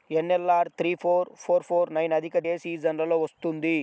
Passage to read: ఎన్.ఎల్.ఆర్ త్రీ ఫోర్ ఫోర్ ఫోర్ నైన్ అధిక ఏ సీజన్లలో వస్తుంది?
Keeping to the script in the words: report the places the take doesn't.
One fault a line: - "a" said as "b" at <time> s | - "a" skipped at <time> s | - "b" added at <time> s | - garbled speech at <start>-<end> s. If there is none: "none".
none